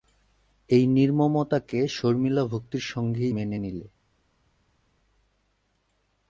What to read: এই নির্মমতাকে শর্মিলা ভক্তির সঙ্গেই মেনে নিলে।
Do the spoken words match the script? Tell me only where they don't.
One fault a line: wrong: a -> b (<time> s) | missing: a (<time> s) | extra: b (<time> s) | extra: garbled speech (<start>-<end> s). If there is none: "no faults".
no faults